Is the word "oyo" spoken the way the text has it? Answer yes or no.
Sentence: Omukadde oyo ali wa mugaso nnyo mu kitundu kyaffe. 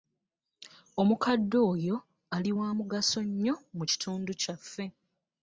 yes